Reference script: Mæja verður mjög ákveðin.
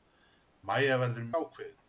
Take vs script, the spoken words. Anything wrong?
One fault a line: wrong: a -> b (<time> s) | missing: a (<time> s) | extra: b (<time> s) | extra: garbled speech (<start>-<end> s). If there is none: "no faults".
missing: mjög (1.3 s)